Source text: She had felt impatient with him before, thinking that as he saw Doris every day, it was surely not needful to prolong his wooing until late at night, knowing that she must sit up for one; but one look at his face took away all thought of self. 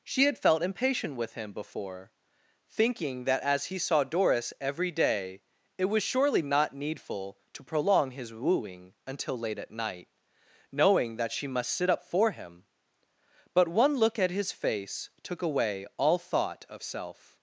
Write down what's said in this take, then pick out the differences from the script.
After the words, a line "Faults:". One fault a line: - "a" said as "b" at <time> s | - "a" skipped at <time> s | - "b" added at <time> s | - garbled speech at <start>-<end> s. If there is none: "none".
She had felt impatient with him before, thinking that as he saw Doris every day, it was surely not needful to prolong his wooing until late at night, knowing that she must sit up for him; but one look at his face took away all thought of self.
Faults:
- "one" said as "him" at 12.3 s